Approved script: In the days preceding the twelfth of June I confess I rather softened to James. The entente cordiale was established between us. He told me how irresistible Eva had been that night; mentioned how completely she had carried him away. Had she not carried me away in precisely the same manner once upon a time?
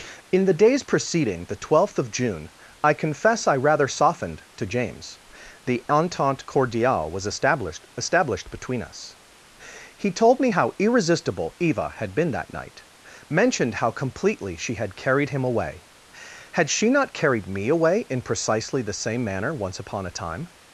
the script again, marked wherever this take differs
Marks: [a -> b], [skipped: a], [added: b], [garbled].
In the days preceding the twelfth of June I confess I rather softened to James. The entente cordiale was established [added: established] between us. He told me how irresistible Eva had been that night; mentioned how completely she had carried him away. Had she not carried me away in precisely the same manner once upon a time?